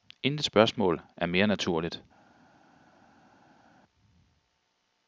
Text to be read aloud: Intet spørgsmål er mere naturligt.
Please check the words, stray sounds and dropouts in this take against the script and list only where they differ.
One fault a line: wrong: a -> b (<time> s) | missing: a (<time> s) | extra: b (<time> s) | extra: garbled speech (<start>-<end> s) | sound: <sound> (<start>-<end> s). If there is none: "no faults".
no faults